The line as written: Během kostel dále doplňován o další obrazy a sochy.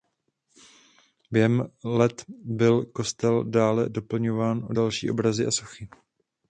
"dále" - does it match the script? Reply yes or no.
yes